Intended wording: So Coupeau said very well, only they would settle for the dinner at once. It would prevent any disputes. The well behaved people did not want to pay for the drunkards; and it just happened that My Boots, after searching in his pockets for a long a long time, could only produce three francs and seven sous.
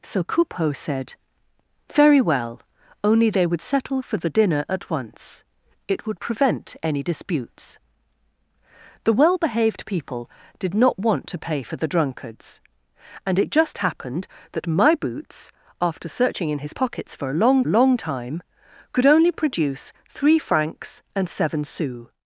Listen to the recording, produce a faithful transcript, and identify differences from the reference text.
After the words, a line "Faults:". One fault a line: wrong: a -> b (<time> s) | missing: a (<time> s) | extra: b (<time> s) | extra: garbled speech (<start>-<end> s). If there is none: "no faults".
So Coupeau said very well, only they would settle for the dinner at once. It would prevent any disputes. The well behaved people did not want to pay for the drunkards; and it just happened that My Boots, after searching in his pockets for a long a long time, could only produce three francs and seven sous.
Faults:
no faults